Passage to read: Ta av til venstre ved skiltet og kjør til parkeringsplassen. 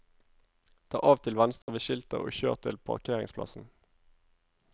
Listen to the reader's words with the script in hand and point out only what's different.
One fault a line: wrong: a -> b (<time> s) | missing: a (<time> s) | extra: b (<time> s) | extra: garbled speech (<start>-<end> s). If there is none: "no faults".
no faults